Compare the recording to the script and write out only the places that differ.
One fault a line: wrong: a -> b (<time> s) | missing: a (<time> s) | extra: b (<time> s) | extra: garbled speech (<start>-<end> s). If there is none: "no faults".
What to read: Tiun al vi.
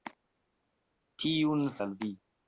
no faults